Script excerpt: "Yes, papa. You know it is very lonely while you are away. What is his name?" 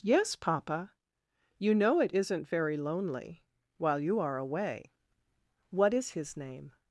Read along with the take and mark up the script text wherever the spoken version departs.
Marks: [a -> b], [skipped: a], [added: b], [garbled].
"Yes, papa. You know it [is -> isn't] very lonely while you are away. What is his name?"